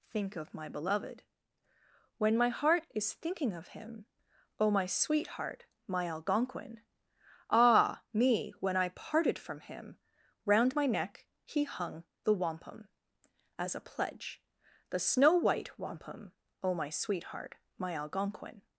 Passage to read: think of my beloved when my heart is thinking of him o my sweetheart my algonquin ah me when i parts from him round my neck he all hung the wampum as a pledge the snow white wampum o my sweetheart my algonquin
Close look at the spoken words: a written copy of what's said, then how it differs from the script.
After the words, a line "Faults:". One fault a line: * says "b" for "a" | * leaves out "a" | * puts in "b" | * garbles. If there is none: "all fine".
think of my beloved when my heart is thinking of him o my sweetheart my algonquin ah me when i parted from him round my neck he hung the wampum as a pledge the snow white wampum o my sweetheart my algonquin
Faults:
* says "parted" for "parts"
* leaves out "all"